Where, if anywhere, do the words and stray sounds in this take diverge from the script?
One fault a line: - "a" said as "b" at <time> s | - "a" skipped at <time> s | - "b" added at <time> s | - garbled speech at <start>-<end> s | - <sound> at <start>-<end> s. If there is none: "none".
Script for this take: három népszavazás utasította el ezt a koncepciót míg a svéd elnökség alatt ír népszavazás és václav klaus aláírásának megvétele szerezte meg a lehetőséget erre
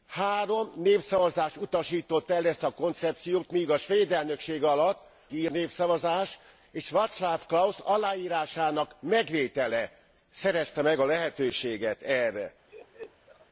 - laugh at 12.7-13.5 s